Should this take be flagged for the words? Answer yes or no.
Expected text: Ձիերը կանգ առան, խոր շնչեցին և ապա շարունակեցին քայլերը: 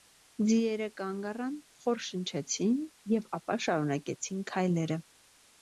no